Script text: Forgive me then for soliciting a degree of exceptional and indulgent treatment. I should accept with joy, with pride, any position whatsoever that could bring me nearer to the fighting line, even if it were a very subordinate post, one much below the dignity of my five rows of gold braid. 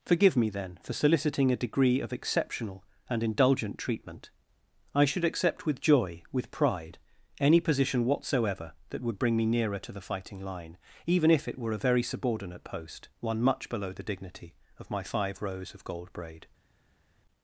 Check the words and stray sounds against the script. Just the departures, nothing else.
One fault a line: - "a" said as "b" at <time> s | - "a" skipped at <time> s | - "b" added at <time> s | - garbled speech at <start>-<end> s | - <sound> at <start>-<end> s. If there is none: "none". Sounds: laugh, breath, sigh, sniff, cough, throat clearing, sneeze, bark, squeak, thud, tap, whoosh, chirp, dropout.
- "could" said as "would" at 9.0 s